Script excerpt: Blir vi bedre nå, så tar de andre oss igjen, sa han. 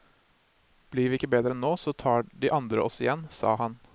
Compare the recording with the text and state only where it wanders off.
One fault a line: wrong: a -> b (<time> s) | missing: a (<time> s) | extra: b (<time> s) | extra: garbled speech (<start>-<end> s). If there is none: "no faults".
extra: ikke (1.2 s)